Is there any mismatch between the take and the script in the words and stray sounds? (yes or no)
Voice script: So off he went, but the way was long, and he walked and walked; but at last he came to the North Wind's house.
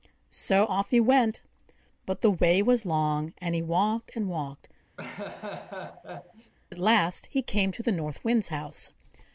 yes